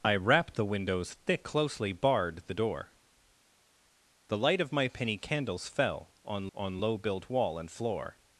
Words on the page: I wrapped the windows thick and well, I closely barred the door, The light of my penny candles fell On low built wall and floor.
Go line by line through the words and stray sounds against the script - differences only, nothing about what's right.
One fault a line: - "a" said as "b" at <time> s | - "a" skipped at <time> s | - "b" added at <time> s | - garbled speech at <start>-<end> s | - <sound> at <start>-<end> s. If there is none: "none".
- "and well I" skipped at 1.4 s
- "On" added at 6.5 s